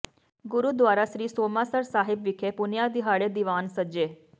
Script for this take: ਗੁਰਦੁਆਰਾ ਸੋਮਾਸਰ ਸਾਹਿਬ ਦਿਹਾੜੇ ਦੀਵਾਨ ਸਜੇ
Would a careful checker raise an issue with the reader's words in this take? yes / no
yes